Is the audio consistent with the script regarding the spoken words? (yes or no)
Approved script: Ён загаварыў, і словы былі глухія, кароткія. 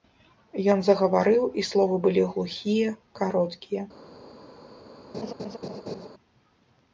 yes